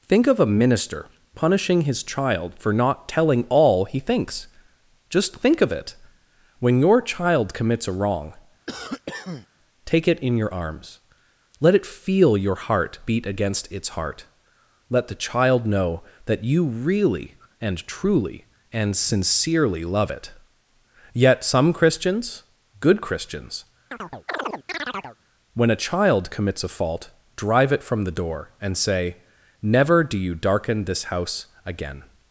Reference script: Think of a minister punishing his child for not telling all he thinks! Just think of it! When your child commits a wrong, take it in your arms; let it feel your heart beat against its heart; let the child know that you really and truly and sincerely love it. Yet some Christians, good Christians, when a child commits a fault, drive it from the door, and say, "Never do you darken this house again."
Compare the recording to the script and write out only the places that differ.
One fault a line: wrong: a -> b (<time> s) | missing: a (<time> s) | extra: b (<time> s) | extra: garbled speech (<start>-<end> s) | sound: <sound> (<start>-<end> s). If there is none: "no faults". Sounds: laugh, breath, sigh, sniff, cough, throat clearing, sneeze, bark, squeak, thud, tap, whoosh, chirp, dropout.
sound: cough (8.7-9.5 s)
sound: chirp (23.9-25.2 s)